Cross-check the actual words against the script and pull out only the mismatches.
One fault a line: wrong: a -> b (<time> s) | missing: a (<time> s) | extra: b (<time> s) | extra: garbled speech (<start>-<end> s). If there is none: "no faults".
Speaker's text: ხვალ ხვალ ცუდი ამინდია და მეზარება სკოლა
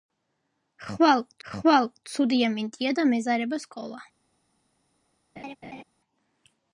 no faults